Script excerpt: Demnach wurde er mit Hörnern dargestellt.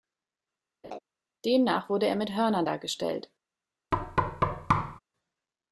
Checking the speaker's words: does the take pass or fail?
pass